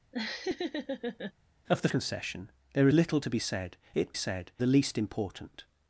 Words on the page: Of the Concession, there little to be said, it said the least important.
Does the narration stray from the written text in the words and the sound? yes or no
yes